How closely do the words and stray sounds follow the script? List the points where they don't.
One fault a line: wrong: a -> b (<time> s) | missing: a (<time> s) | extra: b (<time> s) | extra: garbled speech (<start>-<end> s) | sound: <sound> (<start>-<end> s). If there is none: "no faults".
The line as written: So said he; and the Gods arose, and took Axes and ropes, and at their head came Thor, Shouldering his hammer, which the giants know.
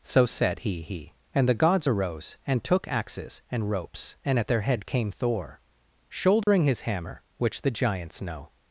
extra: he (0.8 s)
sound: dropout (6.4-6.5 s)